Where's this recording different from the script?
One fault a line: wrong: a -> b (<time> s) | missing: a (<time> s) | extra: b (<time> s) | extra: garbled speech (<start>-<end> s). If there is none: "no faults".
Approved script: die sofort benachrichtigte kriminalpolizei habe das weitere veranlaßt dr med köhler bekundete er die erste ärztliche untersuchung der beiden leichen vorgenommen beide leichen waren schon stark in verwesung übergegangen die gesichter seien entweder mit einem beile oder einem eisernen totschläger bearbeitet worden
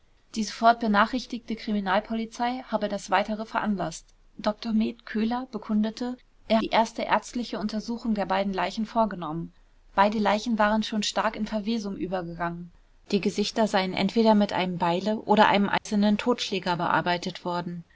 no faults